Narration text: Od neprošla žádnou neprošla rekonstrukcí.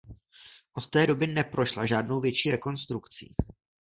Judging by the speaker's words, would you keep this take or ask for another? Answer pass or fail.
fail